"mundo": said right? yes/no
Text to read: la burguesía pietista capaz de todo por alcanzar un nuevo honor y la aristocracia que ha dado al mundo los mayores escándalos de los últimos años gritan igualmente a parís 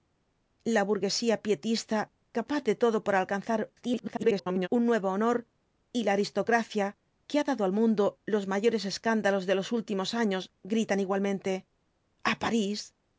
yes